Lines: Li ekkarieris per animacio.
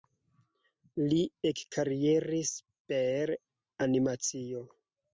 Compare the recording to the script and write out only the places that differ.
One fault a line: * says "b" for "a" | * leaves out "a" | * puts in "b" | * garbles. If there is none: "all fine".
all fine